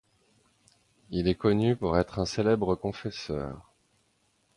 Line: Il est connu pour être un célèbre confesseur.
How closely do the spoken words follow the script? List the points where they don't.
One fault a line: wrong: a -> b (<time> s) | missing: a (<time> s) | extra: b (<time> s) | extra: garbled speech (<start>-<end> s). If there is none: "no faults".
no faults